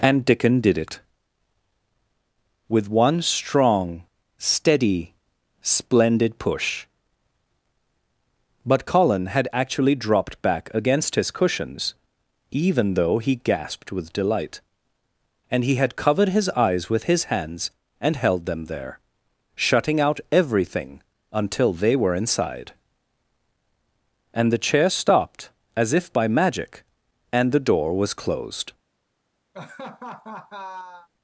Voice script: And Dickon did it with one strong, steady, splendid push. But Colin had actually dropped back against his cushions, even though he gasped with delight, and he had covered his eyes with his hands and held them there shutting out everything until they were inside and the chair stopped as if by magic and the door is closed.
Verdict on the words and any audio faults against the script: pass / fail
fail